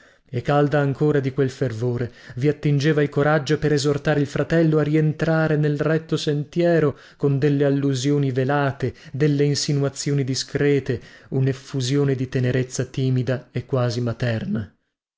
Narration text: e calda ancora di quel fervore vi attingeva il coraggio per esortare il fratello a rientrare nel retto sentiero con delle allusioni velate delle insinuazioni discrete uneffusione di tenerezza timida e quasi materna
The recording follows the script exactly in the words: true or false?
true